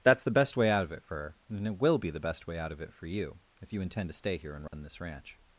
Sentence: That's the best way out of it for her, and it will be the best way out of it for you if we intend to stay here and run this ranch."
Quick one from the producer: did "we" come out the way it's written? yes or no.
no